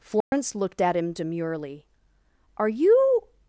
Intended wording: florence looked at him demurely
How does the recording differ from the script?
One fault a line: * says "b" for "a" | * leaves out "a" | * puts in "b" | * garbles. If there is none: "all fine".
* puts in "are you"